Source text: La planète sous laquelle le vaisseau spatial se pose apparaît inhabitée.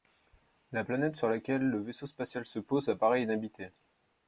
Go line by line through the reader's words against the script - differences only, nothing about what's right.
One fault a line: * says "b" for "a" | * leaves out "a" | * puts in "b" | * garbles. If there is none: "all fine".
* says "sur" for "sous"